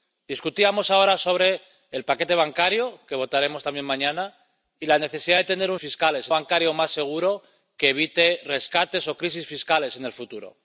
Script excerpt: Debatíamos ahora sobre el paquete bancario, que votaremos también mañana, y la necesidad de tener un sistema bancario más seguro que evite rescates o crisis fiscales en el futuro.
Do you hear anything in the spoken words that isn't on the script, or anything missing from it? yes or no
yes